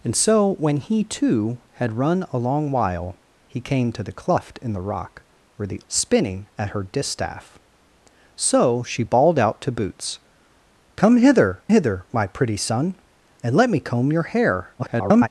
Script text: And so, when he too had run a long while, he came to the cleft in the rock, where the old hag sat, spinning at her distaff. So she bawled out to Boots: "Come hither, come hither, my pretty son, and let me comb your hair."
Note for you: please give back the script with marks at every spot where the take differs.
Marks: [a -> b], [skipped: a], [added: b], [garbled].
And so, when he too had run a long while, he came to the cleft in the rock, where the [skipped: old hag sat,] spinning at her distaff. So she bawled out to Boots: "Come hither, [skipped: come] hither, my pretty son, and let me comb your hair." [garbled]